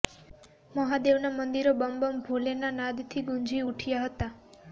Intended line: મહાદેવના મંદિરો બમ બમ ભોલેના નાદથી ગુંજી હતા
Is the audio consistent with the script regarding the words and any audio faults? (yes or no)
no